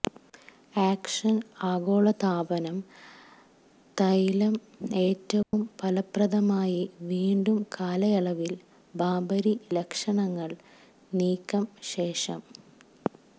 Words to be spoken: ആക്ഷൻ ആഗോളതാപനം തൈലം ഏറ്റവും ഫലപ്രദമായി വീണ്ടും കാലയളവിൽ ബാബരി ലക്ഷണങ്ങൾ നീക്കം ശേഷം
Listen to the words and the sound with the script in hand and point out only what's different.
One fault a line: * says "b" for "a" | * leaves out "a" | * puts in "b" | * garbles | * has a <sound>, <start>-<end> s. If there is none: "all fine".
* has a dropout, 5.4-5.5 s